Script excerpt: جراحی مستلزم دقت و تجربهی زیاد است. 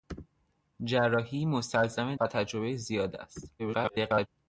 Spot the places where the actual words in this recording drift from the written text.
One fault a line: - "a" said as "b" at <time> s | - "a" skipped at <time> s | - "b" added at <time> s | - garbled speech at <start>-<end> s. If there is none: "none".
- "دقت" skipped at 2.1 s
- garbled speech at 3.6-4.3 s